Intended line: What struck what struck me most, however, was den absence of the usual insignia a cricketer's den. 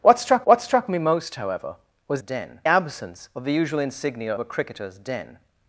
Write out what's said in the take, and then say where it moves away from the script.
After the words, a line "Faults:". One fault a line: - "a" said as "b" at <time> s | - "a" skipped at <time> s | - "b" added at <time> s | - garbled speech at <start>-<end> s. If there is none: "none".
What struck what struck me most, however, was den absence of the usual insignia a cricketer's den.
Faults:
none